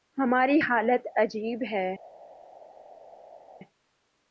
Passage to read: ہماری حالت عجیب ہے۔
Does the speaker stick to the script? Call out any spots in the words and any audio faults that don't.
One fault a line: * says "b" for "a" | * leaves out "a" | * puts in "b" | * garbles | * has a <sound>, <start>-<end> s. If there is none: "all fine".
all fine